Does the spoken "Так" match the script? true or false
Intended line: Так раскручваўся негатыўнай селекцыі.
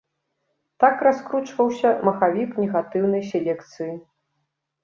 true